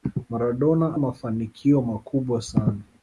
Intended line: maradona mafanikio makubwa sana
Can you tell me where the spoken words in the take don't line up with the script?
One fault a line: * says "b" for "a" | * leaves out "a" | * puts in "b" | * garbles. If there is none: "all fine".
all fine